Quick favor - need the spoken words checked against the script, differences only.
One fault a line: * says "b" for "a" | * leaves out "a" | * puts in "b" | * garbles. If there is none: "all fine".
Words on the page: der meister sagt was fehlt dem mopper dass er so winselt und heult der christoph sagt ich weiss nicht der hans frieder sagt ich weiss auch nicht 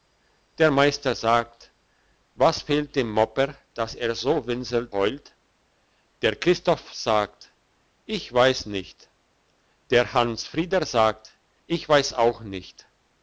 * leaves out "und"